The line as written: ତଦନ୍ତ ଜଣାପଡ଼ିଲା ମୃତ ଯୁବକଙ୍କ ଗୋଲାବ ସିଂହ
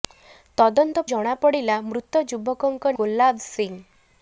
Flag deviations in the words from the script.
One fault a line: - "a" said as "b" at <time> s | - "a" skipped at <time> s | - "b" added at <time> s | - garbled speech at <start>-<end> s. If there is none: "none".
none